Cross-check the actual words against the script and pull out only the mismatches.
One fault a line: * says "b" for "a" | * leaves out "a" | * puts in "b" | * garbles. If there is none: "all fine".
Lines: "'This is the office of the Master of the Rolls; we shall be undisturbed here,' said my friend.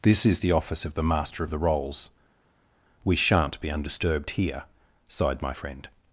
* says "shan't" for "shall"
* says "sighed" for "said"